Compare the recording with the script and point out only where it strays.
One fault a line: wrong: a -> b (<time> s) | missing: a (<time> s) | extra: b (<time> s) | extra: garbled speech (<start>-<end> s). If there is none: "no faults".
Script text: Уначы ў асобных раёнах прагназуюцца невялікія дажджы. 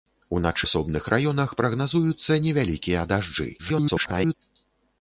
missing: ў (0.7 s)
extra: garbled speech (3.6-4.3 s)